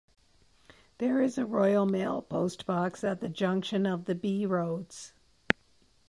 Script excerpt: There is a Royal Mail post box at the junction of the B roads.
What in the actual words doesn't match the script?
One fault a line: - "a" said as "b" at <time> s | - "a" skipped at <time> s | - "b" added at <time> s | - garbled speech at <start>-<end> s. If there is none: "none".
none